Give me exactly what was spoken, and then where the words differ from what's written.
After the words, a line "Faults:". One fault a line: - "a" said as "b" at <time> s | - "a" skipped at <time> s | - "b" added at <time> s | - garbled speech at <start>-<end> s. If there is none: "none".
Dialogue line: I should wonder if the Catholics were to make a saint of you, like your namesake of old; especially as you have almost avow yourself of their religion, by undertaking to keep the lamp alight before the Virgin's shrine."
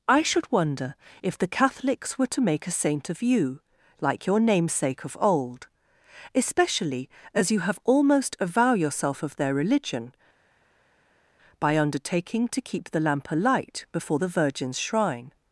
I should wonder if the Catholics were to make a saint of you, like your namesake of old; especially as you have almost avow yourself of their religion, by undertaking to keep the lamp alight before the Virgin's shrine."
Faults:
none